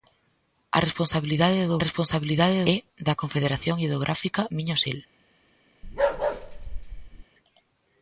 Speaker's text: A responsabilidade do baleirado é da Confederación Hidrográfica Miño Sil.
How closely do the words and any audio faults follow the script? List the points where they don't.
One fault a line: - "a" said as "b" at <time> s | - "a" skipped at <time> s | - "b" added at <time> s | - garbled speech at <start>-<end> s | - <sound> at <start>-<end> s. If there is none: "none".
- "baleirado" said as "responsabilidade" at 1.9 s
- bark at 5.8-7.2 s